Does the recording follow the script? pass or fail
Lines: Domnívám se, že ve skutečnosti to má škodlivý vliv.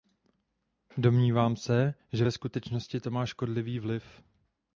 pass